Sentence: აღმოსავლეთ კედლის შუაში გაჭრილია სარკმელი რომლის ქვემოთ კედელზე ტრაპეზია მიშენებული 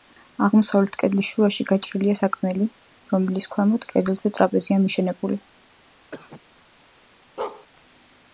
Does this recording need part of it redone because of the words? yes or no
no